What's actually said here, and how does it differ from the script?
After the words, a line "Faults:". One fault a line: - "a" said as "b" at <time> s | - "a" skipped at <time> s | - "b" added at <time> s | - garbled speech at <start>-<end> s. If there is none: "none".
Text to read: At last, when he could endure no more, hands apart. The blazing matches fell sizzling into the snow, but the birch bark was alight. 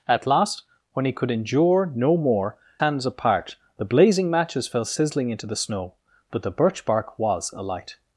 At last, when he could endure no more, hands apart. The blazing matches fell sizzling into the snow, but the birch bark was alight.
Faults:
none